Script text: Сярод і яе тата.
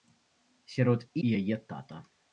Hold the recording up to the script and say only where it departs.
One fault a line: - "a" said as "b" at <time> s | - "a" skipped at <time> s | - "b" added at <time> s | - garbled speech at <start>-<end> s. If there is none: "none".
none